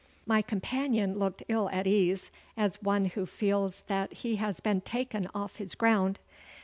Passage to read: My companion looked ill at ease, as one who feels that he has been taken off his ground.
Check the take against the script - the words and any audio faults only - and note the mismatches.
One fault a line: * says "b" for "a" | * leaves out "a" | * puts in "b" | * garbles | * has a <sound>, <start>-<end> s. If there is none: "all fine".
all fine